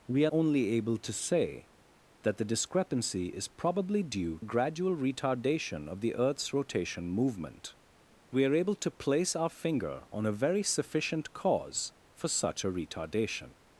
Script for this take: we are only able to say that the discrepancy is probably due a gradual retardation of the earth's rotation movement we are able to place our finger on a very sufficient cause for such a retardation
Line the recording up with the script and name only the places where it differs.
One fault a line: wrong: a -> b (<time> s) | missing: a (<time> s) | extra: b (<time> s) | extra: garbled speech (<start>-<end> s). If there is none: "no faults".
no faults